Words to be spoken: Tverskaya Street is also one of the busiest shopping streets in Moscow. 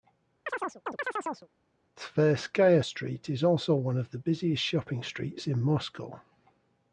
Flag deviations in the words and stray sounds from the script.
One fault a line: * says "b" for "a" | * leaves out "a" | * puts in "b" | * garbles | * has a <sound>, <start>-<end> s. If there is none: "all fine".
* has a chirp, 0.5-1.5 s